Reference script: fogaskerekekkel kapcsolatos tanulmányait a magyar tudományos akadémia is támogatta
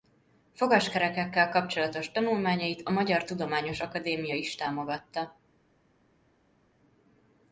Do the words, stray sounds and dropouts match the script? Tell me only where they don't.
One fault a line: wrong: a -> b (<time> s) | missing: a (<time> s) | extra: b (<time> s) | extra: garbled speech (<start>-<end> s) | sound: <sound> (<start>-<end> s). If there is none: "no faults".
no faults